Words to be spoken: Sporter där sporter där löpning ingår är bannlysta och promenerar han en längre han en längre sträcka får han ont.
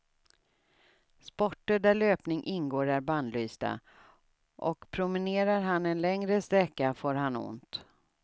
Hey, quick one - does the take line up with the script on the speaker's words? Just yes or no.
no